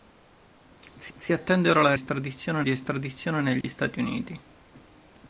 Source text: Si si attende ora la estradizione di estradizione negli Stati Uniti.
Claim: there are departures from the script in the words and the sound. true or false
true